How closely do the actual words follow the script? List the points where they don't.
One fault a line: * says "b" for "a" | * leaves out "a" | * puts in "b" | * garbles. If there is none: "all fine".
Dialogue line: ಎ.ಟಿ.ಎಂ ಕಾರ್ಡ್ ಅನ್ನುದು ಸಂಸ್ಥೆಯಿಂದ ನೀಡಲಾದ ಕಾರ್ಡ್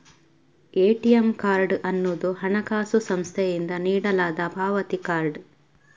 * puts in "ಹಣಕಾಸು"
* puts in "ಪಾವತಿ"